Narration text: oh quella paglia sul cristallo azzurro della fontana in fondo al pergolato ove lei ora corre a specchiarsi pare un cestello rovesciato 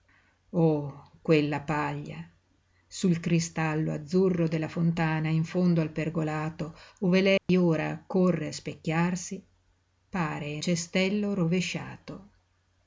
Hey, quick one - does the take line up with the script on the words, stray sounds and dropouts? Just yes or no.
no